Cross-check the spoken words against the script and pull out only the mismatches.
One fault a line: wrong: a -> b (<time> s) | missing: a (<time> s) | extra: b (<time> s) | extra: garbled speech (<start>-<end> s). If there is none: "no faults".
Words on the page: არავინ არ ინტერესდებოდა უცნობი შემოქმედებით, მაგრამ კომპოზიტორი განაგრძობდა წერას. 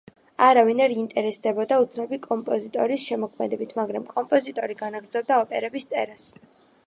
extra: კომპოზიტორის (2.2 s)
extra: ოპერების (5.4 s)